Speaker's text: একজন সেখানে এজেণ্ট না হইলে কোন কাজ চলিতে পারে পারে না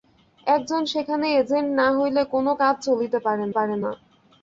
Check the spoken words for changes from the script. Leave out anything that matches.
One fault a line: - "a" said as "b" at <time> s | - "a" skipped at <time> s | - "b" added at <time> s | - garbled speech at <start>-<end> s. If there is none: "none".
none